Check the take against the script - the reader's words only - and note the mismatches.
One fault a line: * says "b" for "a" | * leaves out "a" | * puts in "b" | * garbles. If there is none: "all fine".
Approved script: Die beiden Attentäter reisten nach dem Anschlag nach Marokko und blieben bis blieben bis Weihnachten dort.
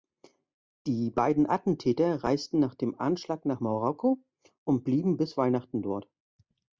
* leaves out "blieben bis"